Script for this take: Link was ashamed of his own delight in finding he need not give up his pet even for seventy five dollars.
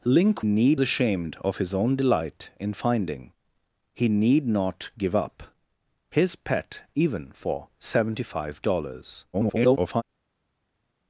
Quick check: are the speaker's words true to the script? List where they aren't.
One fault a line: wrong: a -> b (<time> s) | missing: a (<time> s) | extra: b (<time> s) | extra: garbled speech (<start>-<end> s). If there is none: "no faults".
wrong: was -> need (0.4 s)
extra: garbled speech (9.3-10.0 s)